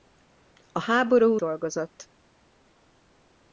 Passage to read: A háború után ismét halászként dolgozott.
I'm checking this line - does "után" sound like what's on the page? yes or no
no